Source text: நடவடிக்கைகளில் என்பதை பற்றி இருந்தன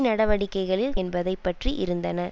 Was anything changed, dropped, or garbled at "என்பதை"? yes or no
no